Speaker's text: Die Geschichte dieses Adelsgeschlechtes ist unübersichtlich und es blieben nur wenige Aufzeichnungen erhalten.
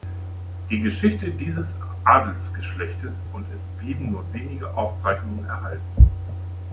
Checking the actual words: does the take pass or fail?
fail